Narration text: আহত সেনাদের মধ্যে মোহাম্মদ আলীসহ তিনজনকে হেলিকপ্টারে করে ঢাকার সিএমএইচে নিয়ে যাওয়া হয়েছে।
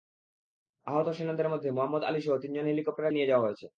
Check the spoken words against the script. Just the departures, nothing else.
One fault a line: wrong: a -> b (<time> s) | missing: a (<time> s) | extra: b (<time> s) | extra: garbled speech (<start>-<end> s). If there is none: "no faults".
missing: করে ঢাকার সিএমএইচে (3.1 s)